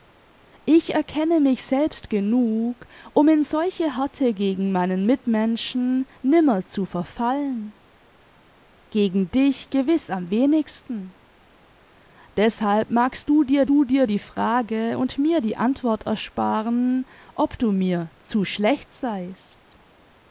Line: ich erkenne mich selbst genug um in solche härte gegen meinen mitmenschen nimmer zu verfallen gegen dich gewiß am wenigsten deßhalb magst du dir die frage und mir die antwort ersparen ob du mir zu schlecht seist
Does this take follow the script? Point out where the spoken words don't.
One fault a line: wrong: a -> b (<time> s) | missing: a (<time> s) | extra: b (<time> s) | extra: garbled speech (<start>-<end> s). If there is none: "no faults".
extra: du dir (13.7 s)